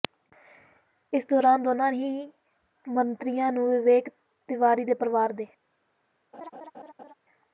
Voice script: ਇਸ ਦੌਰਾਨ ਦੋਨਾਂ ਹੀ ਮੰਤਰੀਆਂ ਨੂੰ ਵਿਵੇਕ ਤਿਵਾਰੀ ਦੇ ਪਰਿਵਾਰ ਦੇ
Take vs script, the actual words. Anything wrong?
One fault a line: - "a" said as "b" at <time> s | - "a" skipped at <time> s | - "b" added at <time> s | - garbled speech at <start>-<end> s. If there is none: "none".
none